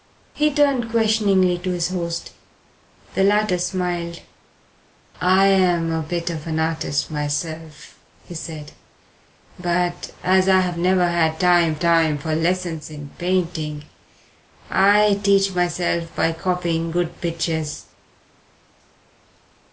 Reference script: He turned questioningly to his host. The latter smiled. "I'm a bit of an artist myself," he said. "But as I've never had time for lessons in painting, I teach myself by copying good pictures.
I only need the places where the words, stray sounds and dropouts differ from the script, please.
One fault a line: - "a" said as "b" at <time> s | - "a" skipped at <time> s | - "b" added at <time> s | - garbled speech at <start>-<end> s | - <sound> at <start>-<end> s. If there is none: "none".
- "time" added at 11.8 s